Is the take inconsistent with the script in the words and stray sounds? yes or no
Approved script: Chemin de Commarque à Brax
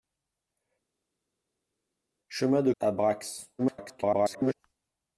yes